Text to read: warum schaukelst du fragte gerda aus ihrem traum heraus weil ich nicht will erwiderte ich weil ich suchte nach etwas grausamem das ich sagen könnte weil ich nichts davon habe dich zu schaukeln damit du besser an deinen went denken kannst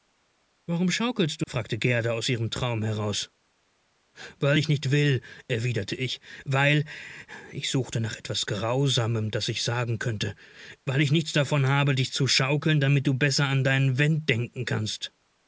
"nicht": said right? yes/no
yes